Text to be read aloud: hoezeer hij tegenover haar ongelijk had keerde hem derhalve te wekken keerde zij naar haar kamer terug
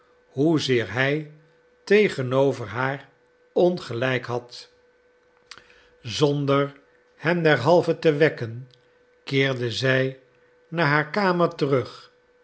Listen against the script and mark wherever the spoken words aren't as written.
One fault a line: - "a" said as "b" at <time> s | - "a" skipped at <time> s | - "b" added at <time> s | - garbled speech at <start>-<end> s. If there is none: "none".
- "keerde" said as "zonder" at 6.0 s